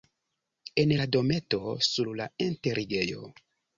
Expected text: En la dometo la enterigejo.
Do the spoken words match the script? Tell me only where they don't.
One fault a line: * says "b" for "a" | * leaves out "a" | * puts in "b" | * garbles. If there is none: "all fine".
* puts in "sur"